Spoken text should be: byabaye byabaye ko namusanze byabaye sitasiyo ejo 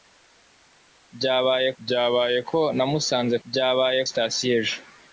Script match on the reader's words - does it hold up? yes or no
yes